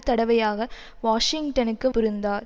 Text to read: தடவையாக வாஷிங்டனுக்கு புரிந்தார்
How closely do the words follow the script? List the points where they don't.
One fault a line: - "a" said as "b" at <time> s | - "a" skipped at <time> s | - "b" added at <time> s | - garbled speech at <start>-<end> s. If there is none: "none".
none